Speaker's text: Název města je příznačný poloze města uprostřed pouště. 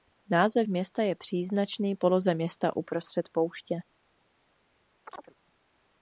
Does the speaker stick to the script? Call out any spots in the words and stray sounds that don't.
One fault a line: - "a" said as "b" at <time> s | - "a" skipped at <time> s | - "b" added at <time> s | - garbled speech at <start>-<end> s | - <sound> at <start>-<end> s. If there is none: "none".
- chirp at 5.1-5.3 s